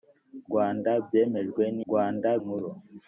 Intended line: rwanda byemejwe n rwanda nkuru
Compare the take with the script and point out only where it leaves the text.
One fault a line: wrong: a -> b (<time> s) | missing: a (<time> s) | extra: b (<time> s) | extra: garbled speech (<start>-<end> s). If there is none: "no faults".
no faults